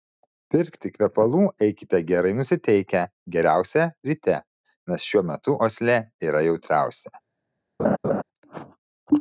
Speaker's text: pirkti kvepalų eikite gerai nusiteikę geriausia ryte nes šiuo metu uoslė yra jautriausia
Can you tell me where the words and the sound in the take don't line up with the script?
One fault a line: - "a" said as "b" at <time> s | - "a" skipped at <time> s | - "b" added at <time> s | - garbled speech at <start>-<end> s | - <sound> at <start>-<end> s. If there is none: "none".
- laugh at 7.8-8.2 s